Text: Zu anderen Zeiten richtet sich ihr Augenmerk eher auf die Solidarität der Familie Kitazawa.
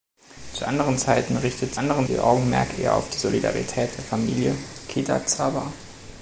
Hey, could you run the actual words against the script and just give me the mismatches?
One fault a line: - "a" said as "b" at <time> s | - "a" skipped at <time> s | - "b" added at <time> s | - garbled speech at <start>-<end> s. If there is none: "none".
- "sich" said as "anderen" at 1.8 s